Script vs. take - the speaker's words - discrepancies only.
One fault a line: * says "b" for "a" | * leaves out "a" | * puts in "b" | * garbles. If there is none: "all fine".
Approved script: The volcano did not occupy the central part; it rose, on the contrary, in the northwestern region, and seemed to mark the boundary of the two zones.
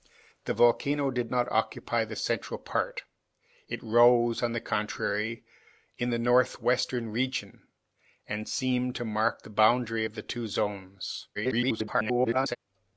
* garbles